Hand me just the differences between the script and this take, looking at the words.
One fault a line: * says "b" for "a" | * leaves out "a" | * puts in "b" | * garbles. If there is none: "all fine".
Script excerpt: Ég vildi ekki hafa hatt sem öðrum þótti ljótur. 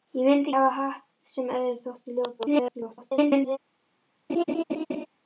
* leaves out "ekki"
* garbles